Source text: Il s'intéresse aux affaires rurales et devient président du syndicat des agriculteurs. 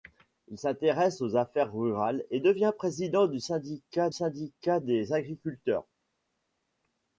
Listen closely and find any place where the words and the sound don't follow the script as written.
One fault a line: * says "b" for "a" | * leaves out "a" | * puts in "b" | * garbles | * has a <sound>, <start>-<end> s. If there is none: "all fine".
* puts in "syndicat"